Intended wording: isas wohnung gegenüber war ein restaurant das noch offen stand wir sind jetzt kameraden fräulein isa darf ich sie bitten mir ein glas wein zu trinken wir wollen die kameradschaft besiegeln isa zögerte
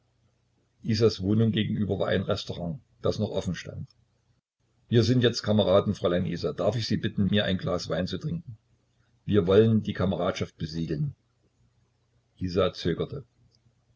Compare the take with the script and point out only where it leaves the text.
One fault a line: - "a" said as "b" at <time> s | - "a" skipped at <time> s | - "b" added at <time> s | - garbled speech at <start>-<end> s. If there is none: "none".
none